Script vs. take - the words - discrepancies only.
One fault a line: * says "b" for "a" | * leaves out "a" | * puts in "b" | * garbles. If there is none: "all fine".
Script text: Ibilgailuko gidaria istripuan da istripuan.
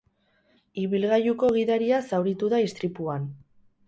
* says "zauritu" for "istripuan"